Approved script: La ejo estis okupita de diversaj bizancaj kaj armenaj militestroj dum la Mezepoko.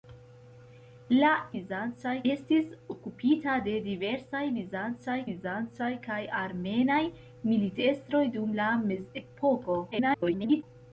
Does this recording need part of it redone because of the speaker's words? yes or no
yes